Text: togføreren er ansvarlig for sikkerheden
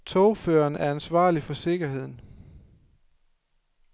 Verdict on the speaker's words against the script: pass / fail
pass